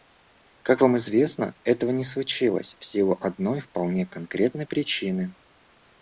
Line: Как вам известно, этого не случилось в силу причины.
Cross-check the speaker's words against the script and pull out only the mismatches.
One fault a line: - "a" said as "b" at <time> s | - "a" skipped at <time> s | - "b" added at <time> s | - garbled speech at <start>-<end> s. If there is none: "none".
- "одной вполне конкретной" added at 3.2 s